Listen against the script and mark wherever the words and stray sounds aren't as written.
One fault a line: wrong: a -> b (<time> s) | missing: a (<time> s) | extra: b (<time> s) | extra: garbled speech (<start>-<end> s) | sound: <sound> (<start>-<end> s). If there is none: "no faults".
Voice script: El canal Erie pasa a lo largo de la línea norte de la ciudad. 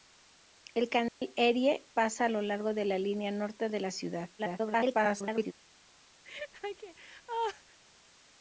sound: dropout (1.1-1.2 s)
extra: garbled speech (4.4-5.5 s)
sound: laugh (6.2-7.8 s)